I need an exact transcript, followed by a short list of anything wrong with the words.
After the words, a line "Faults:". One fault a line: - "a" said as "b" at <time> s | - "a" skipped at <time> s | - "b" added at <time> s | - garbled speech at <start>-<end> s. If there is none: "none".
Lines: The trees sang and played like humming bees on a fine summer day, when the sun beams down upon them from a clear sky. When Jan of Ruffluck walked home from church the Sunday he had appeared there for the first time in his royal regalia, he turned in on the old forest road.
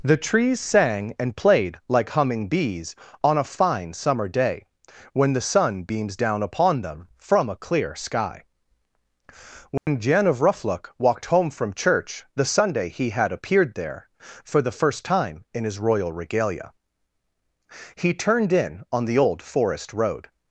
The trees sang and played like humming bees on a fine summer day, when the sun beams down upon them from a clear sky. When Jan of Ruffluck walked home from church the Sunday he had appeared there for the first time in his royal regalia, he turned in on the old forest road.
Faults:
none